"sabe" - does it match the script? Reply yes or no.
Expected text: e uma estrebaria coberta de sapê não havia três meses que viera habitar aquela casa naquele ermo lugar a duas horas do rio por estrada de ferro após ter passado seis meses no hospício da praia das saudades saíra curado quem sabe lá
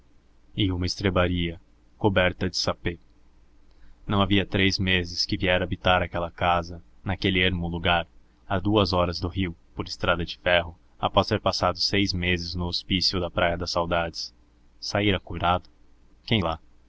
no